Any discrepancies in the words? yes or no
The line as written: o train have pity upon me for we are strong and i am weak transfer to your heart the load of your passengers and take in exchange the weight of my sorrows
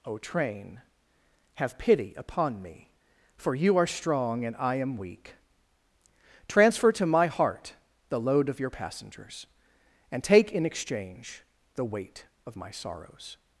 yes